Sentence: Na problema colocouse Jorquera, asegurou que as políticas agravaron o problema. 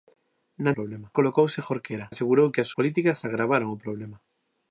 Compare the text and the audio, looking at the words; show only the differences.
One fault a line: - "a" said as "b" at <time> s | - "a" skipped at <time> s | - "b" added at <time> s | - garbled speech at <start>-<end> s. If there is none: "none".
none